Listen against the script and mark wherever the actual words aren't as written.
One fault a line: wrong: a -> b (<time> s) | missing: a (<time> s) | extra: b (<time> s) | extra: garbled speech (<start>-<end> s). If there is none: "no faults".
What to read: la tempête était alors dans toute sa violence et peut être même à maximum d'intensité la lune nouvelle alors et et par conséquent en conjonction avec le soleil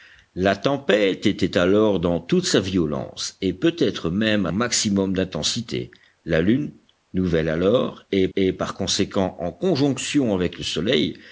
no faults